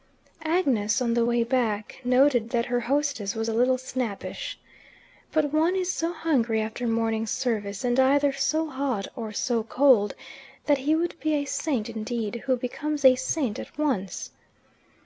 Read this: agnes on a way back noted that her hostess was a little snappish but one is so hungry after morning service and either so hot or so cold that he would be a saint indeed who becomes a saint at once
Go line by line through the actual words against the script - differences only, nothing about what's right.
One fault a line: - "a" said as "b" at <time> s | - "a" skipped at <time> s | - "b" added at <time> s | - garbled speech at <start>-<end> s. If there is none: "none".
- "a" said as "the" at 1.1 s